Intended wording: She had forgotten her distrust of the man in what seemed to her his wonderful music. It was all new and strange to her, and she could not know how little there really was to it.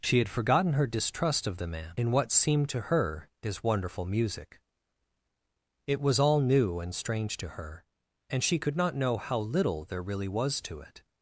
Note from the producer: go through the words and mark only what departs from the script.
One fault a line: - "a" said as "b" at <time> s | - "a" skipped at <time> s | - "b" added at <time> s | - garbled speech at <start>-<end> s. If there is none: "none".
none